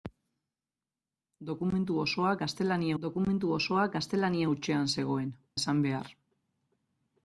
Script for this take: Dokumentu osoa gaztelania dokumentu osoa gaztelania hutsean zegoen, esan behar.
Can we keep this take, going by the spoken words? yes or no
yes